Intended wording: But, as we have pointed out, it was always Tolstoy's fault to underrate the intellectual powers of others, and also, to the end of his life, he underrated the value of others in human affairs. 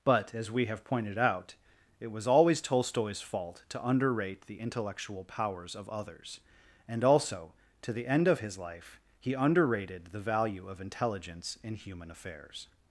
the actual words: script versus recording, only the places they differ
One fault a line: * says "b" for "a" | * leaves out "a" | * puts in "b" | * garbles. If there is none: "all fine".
* says "intelligence" for "others"